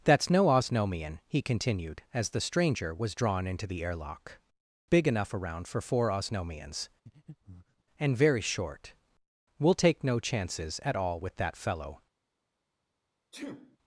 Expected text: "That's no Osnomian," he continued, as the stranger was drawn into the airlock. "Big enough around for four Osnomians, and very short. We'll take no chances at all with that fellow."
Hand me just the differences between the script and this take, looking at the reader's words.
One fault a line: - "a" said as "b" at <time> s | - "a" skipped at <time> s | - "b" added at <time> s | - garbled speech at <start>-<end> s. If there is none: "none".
none